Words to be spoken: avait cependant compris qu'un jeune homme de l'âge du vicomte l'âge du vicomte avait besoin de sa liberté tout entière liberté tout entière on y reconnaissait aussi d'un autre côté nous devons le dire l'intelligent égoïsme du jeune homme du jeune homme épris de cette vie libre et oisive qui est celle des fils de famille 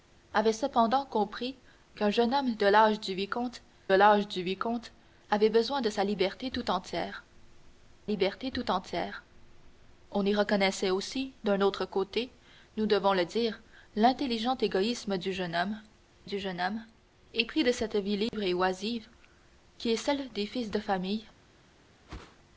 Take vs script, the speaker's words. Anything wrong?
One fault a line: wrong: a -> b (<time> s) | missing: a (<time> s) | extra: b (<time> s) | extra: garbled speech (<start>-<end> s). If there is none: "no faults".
no faults